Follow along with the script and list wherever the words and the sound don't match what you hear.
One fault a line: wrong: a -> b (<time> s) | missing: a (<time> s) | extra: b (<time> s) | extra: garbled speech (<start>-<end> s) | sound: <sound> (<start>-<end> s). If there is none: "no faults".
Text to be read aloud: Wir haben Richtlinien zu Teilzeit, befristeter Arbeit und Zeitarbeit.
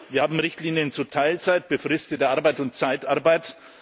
no faults